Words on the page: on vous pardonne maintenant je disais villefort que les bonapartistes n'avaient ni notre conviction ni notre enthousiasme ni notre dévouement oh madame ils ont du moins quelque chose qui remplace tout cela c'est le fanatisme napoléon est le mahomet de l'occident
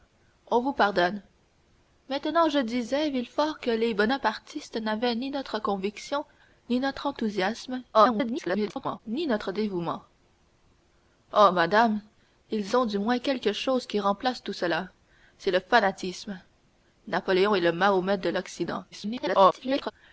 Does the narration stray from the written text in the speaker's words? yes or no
yes